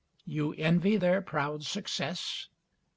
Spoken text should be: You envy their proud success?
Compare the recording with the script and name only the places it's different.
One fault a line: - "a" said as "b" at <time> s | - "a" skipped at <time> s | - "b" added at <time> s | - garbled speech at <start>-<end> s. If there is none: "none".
none